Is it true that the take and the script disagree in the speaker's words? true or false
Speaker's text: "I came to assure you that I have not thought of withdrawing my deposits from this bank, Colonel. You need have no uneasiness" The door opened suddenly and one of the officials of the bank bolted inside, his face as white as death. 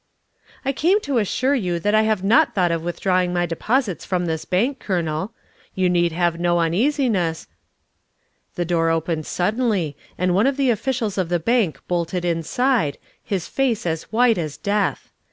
false